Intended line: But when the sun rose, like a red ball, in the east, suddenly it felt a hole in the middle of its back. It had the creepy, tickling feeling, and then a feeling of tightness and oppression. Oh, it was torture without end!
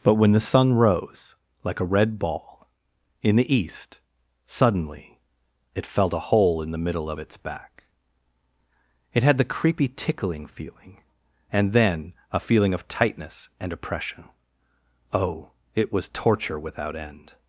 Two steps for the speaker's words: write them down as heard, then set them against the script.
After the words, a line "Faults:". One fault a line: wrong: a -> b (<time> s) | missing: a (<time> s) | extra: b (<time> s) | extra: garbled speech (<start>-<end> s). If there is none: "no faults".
But when the sun rose, like a red ball, in the east, suddenly it felt a hole in the middle of its back. It had the creepy, tickling feeling, and then a feeling of tightness and oppression. Oh, it was torture without end!
Faults:
no faults